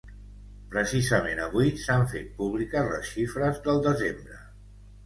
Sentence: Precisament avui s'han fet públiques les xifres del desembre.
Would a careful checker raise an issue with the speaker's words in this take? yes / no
no